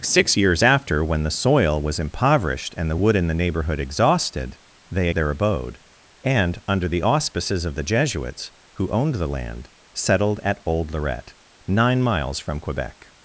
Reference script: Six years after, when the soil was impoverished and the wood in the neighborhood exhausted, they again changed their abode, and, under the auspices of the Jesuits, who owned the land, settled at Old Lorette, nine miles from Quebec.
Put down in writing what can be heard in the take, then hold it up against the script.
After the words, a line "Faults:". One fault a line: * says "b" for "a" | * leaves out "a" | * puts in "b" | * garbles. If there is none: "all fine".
Six years after, when the soil was impoverished and the wood in the neighborhood exhausted, they their abode, and, under the auspices of the Jesuits, who owned the land, settled at Old Lorette, nine miles from Quebec.
Faults:
* leaves out "again changed"